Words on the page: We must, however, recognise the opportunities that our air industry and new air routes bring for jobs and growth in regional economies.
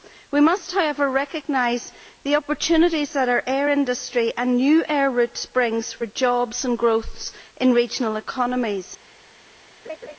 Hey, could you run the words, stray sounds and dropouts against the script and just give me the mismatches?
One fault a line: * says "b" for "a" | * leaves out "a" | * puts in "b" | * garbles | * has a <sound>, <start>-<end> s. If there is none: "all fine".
* has a laugh, 9.8-10.2 s